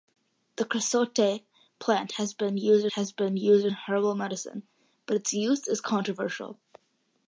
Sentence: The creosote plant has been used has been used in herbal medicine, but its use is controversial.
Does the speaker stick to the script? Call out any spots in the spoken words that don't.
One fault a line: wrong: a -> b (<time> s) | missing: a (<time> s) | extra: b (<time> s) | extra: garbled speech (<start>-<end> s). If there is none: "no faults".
no faults